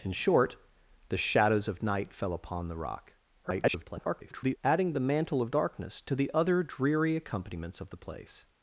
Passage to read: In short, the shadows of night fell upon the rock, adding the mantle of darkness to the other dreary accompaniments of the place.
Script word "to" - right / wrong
right